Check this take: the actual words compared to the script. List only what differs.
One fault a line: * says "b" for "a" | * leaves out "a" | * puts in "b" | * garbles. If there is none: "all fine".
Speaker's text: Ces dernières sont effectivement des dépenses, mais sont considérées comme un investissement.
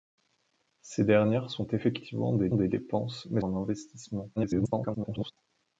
* puts in "des"
* leaves out "sont considérées comme"
* garbles